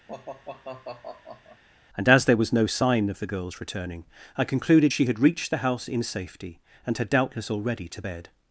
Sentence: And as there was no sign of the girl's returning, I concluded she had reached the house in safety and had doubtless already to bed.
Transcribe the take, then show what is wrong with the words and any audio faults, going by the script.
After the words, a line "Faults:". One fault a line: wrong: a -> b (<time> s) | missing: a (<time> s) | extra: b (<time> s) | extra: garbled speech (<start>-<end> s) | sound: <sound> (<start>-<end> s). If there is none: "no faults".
And as there was no sign of the girl's returning, I concluded she had reached the house in safety and had doubtless already to bed.
Faults:
sound: sigh (0.1-1.6 s)